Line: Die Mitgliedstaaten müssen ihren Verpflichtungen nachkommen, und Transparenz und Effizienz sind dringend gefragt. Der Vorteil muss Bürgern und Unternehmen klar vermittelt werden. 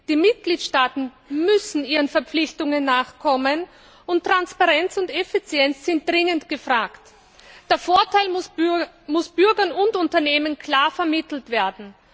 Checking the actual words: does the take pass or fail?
pass